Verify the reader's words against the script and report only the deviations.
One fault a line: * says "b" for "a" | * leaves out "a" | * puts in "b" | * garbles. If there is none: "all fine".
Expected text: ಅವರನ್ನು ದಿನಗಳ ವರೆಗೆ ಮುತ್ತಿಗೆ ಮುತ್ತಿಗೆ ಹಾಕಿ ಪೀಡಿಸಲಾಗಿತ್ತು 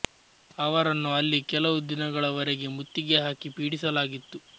* puts in "ಅಲ್ಲಿ ಕೆಲವು"
* leaves out "ಮುತ್ತಿಗೆ"